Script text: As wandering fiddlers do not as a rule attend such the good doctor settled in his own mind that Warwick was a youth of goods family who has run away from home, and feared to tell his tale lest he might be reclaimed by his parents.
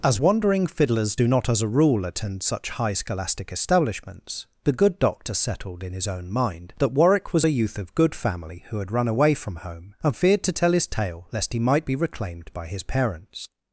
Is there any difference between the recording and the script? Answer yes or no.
yes